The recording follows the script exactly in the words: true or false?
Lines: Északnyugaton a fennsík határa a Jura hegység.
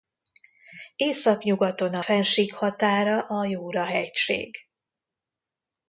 true